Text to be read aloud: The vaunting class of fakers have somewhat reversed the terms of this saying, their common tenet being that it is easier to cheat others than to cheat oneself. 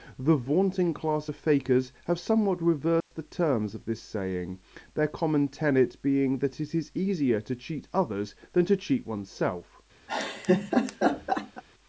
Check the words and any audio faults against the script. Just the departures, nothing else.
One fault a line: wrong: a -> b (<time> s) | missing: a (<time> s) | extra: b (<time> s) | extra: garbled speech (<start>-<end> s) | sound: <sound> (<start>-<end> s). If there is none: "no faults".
sound: dropout (3.0-3.1 s)
sound: laugh (10.1-11.6 s)